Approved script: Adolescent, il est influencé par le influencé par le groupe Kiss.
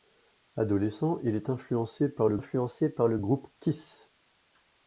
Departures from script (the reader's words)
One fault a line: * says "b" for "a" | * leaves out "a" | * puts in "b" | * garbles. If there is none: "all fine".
all fine